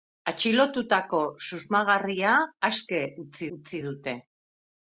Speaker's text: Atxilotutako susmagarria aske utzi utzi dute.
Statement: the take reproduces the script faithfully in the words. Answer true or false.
true